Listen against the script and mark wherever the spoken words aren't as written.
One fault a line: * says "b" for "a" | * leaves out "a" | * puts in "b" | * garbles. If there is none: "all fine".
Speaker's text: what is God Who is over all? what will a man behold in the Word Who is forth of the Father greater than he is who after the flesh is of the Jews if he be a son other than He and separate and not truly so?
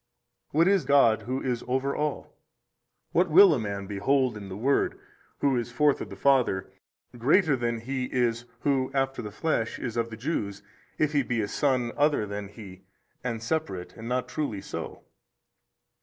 all fine